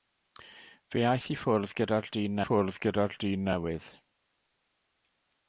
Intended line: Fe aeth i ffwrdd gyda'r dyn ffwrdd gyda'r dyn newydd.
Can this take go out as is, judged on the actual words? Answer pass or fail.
pass